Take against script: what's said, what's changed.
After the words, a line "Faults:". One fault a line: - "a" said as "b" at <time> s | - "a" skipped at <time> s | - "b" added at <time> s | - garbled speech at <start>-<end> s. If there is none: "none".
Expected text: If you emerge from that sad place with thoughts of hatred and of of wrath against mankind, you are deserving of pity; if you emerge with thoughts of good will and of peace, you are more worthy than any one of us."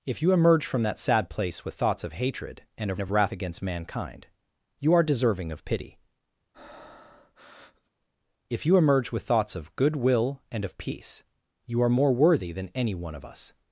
If you emerge from that sad place with thoughts of hatred and of of wrath against mankind, you are deserving of pity; if you emerge with thoughts of good will and of peace, you are more worthy than any one of us."
Faults:
none